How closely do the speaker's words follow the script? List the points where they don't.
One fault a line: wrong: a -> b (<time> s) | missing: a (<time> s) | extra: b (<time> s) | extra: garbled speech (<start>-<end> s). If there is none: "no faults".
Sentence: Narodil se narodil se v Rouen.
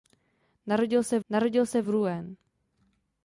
no faults